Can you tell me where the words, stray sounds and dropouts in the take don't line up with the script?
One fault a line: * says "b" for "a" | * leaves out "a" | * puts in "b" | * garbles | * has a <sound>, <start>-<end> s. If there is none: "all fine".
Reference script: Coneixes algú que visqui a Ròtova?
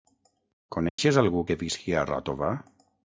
* has a dropout, 0.9-1.0 s